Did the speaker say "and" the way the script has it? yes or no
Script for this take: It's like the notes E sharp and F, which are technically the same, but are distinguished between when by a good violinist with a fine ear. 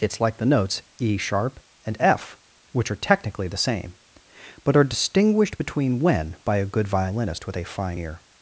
yes